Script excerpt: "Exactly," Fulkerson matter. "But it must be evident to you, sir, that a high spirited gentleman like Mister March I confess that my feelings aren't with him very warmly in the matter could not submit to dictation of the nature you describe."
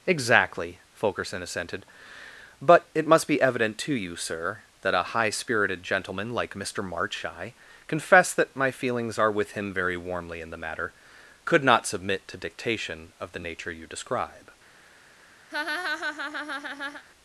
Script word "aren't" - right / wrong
wrong